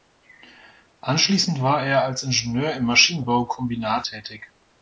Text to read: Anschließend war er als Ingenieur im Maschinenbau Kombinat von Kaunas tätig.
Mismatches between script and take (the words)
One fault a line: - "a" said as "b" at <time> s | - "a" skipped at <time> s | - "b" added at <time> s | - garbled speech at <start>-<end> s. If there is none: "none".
- "von Kaunas" skipped at 4.1 s